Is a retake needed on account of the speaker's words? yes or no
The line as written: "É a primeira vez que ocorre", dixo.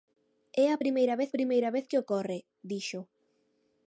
yes